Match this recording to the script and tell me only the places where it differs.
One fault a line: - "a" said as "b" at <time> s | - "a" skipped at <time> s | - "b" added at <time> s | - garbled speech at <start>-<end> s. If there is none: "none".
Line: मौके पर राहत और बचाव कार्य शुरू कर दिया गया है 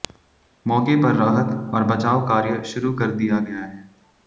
none